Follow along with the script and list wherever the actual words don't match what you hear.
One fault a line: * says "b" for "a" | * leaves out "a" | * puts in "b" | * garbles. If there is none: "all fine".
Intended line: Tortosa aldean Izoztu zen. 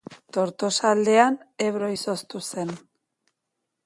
* puts in "Ebro"